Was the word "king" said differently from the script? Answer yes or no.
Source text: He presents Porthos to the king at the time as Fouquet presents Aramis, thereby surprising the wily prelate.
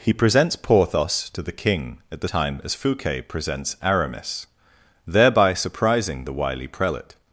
no